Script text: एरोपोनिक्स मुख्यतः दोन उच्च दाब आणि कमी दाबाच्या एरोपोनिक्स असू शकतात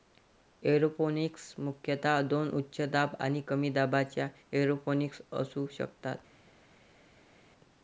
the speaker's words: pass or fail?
pass